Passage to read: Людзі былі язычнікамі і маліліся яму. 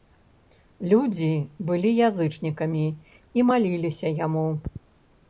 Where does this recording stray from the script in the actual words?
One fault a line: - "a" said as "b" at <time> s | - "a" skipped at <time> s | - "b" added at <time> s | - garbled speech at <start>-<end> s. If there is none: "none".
none